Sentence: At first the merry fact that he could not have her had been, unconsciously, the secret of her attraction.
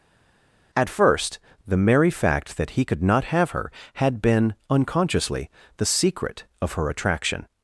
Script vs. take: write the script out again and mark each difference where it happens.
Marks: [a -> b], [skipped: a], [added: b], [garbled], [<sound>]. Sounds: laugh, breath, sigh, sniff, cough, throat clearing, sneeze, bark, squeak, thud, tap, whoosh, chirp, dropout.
At first the merry fact that he could not have her had been, unconsciously, the secret of her attraction.